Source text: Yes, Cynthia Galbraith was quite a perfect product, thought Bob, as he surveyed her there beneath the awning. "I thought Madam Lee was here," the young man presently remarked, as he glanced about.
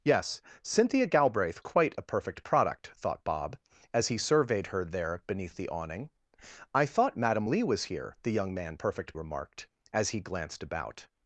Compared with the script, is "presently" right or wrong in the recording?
wrong